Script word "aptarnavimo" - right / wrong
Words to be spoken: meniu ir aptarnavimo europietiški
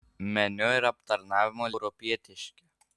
right